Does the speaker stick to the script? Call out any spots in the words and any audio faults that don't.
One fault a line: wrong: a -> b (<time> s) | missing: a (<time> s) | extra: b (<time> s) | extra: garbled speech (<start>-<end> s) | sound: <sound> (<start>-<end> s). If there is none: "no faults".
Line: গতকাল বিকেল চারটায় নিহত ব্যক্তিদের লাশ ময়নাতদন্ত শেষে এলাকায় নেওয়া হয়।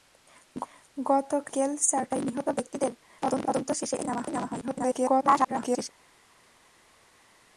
missing: লাশ (2.9 s)
extra: garbled speech (4.6-5.9 s)